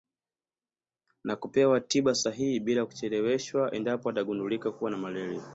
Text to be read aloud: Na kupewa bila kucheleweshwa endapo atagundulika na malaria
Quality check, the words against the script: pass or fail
fail